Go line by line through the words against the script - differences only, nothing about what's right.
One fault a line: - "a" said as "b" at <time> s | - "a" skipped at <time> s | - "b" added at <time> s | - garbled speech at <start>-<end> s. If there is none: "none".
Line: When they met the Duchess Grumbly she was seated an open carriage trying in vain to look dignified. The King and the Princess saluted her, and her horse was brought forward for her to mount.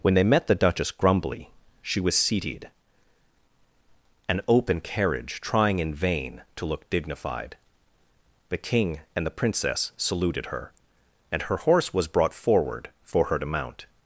none